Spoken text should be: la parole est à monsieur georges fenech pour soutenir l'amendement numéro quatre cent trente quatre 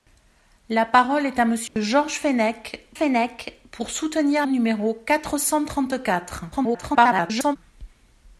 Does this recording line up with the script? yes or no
no